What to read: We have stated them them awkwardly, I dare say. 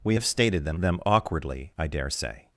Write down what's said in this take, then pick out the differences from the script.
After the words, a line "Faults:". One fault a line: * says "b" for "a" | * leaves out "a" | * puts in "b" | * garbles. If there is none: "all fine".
We have stated them them awkwardly, I dare say.
Faults:
all fine